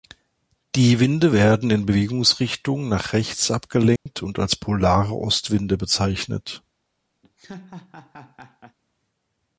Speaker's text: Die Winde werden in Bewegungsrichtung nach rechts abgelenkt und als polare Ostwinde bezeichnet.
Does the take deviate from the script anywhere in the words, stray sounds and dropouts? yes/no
yes